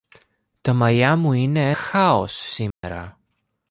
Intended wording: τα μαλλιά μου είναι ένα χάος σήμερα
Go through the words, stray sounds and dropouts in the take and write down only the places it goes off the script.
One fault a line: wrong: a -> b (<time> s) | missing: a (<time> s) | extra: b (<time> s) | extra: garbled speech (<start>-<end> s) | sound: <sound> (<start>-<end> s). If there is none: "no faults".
missing: ένα (1.7 s)
sound: dropout (2.7-2.8 s)